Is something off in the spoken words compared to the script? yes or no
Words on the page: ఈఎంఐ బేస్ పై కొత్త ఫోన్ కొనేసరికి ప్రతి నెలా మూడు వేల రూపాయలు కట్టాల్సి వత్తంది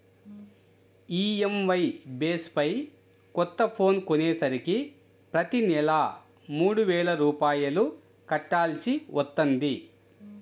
no